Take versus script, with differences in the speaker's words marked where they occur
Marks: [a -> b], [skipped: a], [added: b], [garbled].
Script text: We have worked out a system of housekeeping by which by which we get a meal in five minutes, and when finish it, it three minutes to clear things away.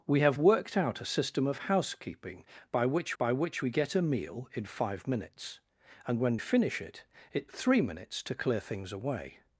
We have worked out a system of housekeeping by which by which we get a meal in five minutes, and when finish it, it three minutes to clear things away.